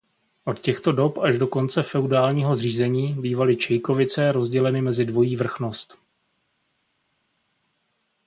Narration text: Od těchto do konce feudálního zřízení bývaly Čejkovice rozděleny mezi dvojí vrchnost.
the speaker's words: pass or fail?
fail